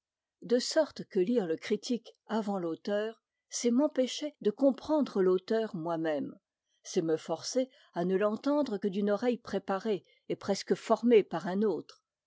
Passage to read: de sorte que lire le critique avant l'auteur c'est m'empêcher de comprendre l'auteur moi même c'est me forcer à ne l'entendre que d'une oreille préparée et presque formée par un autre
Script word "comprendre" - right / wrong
right